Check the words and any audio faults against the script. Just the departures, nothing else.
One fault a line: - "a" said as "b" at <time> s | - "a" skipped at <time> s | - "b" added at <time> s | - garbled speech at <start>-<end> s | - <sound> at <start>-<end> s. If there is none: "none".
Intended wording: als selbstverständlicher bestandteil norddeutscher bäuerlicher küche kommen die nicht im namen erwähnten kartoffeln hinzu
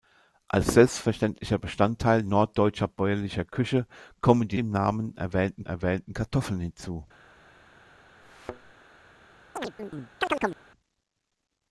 - "nicht" skipped at 4.6 s
- "erwähnten" added at 5.6 s
- thud at 8.2-8.7 s
- chirp at 9.6-10.6 s